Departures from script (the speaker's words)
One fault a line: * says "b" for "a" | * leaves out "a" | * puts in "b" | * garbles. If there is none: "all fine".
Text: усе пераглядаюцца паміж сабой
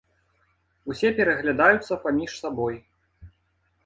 all fine